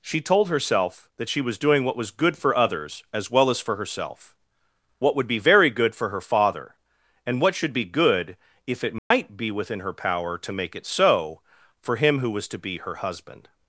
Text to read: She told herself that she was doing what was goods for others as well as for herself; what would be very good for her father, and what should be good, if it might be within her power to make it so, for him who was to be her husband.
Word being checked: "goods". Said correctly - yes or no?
no